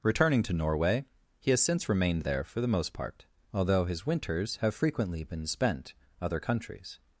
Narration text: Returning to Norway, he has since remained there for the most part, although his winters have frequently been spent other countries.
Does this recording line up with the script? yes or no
yes